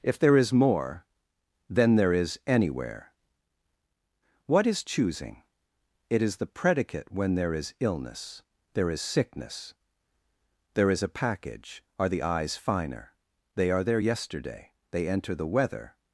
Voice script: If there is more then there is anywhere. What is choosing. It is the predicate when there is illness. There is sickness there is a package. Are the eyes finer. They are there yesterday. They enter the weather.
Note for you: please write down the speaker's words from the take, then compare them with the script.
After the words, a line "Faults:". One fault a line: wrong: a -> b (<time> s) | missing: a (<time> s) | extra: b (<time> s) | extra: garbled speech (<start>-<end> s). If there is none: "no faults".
If there is more then there is anywhere. What is choosing. It is the predicate when there is illness. There is sickness there is a package. Are the eyes finer. They are there yesterday. They enter the weather.
Faults:
no faults